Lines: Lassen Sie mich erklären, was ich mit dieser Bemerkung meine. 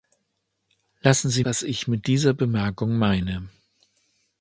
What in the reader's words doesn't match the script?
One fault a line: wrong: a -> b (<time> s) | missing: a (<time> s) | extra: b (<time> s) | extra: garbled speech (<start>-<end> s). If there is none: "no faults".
missing: mich erklären (1.4 s)